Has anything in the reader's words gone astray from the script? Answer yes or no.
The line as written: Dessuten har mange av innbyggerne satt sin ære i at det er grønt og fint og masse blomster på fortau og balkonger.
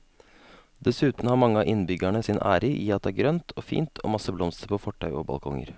yes